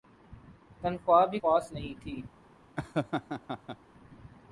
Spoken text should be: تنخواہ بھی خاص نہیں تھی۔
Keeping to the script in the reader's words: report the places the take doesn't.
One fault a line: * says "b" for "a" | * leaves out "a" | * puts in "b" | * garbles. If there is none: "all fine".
all fine